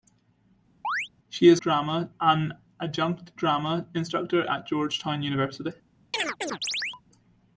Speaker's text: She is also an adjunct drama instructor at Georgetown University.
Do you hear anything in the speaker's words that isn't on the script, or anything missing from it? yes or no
yes